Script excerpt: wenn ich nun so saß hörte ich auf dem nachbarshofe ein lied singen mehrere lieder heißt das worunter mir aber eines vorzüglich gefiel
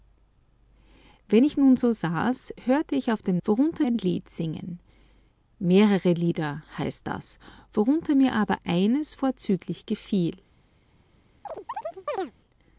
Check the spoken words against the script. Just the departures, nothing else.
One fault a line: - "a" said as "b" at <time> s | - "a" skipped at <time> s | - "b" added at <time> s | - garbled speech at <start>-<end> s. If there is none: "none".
- "nachbarshofe" said as "worunter" at 3.5 s